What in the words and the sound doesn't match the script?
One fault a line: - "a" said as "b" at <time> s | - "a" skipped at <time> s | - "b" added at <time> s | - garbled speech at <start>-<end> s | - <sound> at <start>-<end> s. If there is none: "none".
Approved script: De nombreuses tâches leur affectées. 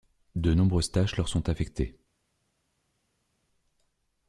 - "sont" added at 1.3 s